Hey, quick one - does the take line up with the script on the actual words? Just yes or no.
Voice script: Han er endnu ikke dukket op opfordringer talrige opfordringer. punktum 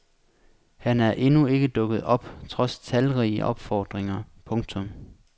no